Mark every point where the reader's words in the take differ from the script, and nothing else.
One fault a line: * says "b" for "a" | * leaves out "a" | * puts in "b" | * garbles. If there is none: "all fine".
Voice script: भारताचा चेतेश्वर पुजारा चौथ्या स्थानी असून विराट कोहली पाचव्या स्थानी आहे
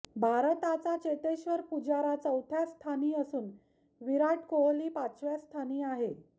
all fine